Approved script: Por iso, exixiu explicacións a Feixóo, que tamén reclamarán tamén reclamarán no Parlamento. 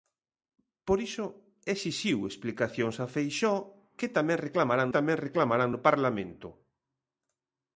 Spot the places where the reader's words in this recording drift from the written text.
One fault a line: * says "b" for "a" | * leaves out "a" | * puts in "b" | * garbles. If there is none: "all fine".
all fine